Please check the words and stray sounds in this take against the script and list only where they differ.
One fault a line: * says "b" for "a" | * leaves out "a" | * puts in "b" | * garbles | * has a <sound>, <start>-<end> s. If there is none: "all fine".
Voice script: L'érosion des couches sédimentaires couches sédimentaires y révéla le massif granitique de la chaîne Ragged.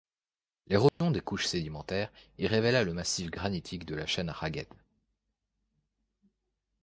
* has a dropout, 0.9-1.0 s
* leaves out "couches sédimentaires"